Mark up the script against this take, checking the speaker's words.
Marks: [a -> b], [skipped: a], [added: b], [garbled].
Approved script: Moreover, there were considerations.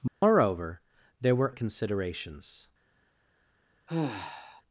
Moreover, there were considerations.